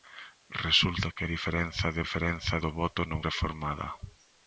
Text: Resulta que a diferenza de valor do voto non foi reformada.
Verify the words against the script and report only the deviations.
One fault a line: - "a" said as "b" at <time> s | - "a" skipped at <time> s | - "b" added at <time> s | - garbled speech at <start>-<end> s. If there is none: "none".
- "valor" said as "diferenza" at 2.0 s
- "foi" skipped at 3.2 s